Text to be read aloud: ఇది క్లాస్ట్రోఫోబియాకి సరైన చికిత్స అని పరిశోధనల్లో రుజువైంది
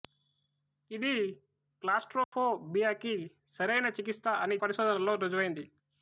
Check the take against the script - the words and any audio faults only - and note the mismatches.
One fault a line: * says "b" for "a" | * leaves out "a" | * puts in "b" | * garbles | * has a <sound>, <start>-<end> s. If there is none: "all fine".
* has a dropout, 2.2-2.3 s